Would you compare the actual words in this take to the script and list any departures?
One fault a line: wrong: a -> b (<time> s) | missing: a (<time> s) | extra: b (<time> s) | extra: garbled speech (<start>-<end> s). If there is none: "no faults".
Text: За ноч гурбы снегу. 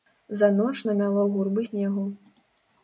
extra: намяло (0.8 s)